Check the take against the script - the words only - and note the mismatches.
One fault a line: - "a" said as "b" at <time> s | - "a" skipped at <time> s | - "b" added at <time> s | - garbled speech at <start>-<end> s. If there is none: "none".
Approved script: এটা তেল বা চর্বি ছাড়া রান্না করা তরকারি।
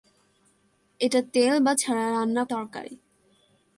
- "চর্বি" skipped at 1.7 s
- "করা" skipped at 2.4 s